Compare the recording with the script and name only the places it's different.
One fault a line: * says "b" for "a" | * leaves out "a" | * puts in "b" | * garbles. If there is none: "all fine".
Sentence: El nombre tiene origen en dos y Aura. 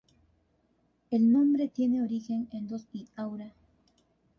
all fine